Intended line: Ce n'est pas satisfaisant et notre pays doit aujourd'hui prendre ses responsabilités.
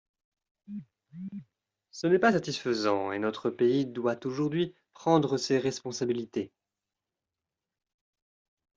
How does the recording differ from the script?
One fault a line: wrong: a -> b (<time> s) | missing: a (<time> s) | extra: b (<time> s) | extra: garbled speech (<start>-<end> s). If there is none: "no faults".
no faults